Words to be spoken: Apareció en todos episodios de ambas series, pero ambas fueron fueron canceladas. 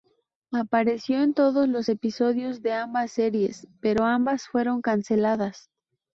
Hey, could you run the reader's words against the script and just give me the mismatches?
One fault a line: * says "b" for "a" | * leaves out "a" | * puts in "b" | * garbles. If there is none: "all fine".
* puts in "los"
* leaves out "fueron"